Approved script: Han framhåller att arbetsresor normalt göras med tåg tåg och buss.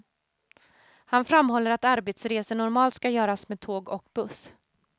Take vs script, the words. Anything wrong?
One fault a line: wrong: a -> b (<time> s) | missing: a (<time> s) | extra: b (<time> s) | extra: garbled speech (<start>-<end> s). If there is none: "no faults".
extra: ska (2.9 s)
missing: tåg (3.9 s)